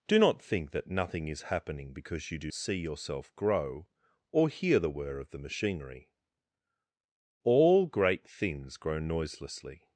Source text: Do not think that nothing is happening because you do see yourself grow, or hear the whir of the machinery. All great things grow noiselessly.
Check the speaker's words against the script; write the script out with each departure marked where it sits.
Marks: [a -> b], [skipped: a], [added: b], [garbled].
Do not think that nothing is happening because you do see yourself grow, or hear the whir of the machinery. All great things grow noiselessly.